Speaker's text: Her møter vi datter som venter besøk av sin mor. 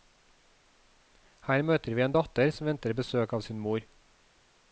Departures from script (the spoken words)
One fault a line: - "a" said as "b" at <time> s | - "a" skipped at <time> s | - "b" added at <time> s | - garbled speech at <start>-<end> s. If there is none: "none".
- "en" added at 2.0 s